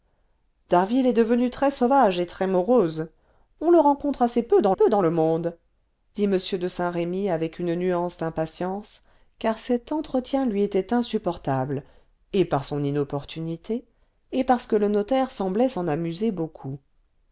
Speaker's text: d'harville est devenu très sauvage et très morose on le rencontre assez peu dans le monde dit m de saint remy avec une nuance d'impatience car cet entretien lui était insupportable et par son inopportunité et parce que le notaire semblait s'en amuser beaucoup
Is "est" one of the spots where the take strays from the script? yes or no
no